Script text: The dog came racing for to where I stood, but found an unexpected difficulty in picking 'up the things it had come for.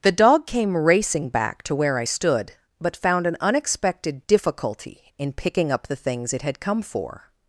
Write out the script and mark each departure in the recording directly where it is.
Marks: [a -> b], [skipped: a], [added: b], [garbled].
The dog came racing [for -> back] to where I stood, but found an unexpected difficulty in picking 'up the things it had come for.